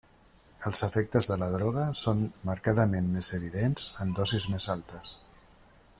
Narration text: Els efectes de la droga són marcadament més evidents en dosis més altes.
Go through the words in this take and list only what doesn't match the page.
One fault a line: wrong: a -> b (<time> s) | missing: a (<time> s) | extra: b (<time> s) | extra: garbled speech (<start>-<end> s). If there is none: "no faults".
no faults